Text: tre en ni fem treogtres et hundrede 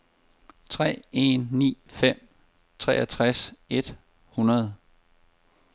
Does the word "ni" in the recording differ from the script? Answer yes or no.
no